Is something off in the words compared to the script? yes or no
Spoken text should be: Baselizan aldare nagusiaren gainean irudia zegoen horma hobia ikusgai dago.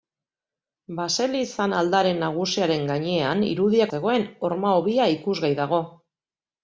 no